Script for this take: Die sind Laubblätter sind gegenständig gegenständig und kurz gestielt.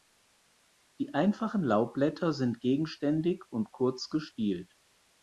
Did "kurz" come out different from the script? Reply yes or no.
no